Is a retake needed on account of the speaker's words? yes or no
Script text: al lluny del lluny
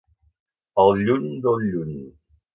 no